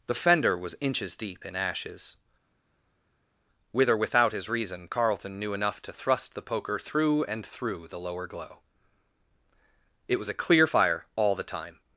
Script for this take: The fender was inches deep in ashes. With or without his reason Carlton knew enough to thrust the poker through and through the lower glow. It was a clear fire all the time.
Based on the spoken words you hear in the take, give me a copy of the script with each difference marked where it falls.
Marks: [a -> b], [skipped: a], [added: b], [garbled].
The fender was inches deep in ashes. With or without his reason Carlton knew enough to thrust the poker through and through the lower glow. It was a clear fire all the time.